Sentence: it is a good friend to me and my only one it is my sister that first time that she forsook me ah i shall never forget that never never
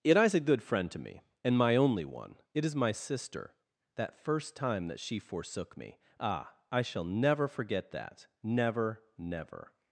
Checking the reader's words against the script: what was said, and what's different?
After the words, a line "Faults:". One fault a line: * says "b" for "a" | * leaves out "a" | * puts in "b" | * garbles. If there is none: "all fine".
it is a good friend to me and my only one it is my sister that first time that she forsook me ah i shall never forget that never never
Faults:
all fine